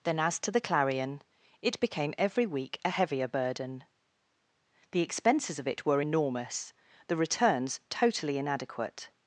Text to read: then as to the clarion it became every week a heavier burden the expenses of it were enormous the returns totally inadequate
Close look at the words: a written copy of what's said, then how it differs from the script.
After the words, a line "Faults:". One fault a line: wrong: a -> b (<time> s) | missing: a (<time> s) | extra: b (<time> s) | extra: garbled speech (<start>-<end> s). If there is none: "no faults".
then as to the clarion it became every week a heavier burden the expenses of it were enormous the returns totally inadequate
Faults:
no faults